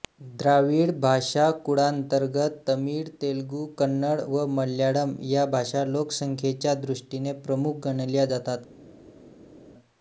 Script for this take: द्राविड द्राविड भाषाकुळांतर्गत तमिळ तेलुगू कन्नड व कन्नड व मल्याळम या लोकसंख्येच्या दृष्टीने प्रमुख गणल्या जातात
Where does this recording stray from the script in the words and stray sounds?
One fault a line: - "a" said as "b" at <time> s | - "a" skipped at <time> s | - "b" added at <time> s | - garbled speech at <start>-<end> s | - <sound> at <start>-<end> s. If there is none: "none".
- "द्राविड" skipped at 0.9 s
- "कन्नड व" skipped at 4.5 s
- "भाषा" added at 5.5 s